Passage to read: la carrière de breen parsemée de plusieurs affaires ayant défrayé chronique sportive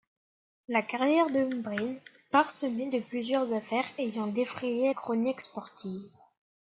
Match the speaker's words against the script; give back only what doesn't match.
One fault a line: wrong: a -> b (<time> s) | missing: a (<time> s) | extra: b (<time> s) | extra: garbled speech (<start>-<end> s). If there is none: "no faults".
no faults